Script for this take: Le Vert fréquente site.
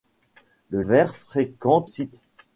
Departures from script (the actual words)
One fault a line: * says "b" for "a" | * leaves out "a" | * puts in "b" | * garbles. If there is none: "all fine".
all fine